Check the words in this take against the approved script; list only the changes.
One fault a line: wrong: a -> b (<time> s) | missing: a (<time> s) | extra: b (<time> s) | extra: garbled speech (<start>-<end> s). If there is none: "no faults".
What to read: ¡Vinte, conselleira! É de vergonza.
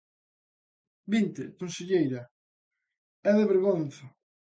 no faults